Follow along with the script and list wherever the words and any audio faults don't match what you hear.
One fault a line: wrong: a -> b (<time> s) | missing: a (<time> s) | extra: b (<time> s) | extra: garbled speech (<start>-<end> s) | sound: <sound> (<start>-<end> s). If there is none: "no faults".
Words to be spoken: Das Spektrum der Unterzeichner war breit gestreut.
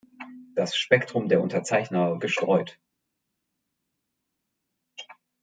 missing: war breit (2.2 s)